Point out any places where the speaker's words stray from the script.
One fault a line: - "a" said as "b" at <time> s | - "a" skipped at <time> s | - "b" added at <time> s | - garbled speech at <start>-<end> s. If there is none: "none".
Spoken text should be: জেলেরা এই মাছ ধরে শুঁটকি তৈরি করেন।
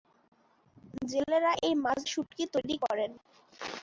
- "ধরে" skipped at 2.0 s